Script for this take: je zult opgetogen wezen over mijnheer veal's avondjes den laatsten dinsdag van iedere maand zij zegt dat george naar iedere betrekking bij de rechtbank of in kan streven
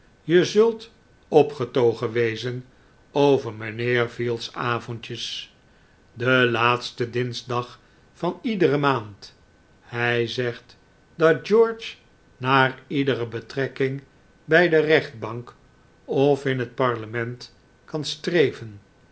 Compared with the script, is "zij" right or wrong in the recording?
wrong